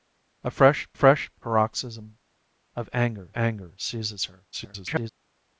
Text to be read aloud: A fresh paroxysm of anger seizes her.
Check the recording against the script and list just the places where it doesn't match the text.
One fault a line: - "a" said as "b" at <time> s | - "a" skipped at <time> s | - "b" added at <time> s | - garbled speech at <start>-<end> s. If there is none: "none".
- "fresh" added at 0.9 s
- "anger" added at 3.3 s
- garbled speech at 4.5-5.1 s